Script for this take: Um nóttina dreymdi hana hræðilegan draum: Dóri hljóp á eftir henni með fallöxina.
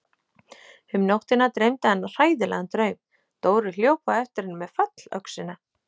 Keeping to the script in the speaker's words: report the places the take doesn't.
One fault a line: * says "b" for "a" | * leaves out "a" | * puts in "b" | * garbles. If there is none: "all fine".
all fine